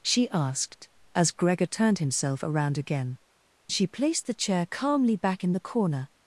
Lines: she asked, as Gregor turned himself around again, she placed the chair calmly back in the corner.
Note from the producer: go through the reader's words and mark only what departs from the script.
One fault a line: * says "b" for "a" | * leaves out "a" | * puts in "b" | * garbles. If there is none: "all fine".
all fine